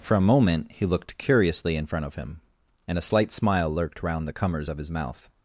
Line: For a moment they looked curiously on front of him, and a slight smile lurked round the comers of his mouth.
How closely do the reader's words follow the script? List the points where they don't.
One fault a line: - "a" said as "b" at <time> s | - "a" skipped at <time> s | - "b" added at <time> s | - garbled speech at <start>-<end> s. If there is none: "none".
- "they" said as "he" at 0.7 s
- "on" said as "in" at 1.8 s